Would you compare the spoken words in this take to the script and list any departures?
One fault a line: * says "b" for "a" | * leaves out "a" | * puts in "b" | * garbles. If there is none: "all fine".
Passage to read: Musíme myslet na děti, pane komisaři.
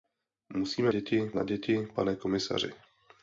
* says "děti" for "myslet"